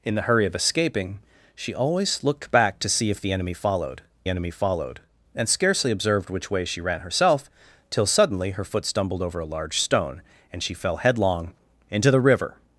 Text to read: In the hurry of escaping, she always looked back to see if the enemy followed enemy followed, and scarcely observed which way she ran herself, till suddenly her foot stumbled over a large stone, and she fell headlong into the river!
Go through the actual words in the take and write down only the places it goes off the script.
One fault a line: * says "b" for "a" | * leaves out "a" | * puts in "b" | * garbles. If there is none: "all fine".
all fine